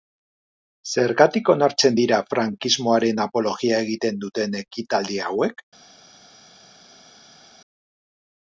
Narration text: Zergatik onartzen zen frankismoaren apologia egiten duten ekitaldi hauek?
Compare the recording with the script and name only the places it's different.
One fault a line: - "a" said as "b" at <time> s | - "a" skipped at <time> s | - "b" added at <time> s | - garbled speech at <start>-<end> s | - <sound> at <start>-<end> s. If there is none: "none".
- "zen" said as "dira" at 2.0 s